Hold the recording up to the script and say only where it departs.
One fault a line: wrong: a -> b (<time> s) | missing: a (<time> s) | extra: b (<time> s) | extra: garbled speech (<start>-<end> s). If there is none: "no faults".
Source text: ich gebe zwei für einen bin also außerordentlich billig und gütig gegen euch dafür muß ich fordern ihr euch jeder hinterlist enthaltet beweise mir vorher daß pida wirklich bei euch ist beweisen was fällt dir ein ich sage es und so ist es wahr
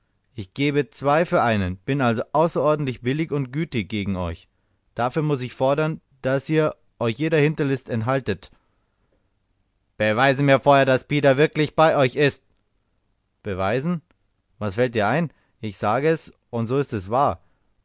extra: daß (6.2 s)